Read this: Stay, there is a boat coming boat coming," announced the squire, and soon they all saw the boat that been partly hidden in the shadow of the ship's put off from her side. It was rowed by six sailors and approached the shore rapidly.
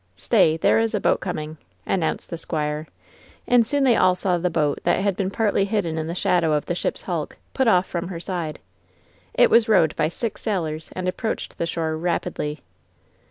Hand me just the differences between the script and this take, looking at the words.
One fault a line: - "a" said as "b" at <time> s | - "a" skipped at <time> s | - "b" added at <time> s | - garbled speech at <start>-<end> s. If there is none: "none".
- "boat coming" skipped at 1.6 s
- "had" added at 5.0 s
- "hulk" added at 7.0 s